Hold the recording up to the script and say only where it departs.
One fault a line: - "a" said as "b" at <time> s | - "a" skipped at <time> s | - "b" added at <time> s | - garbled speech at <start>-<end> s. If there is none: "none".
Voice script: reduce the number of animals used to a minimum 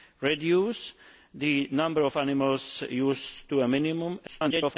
- garbled speech at 4.3-4.8 s